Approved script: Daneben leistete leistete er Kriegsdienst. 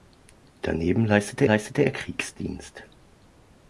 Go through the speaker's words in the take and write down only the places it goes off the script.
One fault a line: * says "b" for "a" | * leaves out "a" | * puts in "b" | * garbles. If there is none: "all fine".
all fine